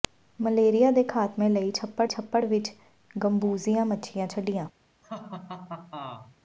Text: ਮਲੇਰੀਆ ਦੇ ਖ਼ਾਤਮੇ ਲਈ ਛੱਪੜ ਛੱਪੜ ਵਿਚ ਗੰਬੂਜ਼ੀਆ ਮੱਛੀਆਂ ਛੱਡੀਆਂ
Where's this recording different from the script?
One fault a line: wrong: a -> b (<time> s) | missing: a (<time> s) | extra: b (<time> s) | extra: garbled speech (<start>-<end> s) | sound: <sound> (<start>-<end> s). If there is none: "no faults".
sound: laugh (5.0-6.4 s)